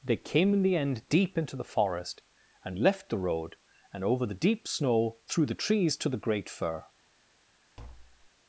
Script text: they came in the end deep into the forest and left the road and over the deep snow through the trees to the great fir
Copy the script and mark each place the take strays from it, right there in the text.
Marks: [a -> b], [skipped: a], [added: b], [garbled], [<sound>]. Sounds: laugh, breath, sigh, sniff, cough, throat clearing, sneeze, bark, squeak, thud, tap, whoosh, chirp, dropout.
they came in the end deep into the forest and left the road and over the deep snow through the trees to the great fir [tap]